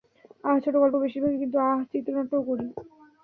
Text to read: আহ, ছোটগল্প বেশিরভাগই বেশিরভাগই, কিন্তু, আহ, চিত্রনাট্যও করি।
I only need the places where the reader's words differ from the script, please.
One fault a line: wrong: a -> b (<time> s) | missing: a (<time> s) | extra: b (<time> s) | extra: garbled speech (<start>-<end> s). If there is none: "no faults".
missing: বেশিরভাগই (1.4 s)